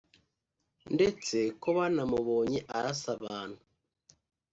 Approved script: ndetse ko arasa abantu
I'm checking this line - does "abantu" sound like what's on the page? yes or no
yes